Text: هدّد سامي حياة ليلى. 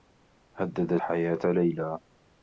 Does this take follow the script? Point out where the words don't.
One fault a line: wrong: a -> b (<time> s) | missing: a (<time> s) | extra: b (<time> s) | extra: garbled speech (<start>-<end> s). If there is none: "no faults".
missing: سامي (1.0 s)